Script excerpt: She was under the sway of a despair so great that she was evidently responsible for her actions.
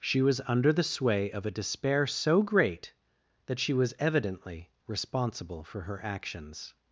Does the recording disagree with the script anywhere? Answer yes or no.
no